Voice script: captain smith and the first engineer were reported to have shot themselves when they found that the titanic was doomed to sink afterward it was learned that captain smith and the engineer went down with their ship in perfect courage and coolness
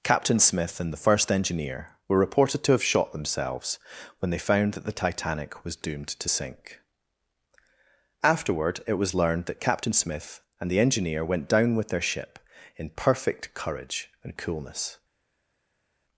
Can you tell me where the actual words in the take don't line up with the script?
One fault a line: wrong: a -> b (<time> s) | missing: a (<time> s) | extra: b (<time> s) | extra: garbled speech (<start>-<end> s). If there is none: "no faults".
no faults